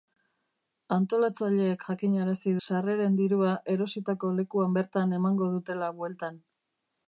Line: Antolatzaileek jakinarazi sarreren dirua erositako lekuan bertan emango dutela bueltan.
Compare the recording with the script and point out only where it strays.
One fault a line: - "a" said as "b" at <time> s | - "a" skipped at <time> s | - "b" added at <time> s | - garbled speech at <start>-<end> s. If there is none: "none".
none